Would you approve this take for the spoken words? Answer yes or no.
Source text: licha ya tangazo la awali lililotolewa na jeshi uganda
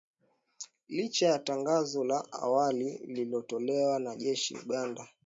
yes